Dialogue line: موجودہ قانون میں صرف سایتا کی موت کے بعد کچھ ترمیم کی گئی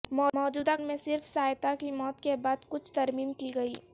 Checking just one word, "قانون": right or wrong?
wrong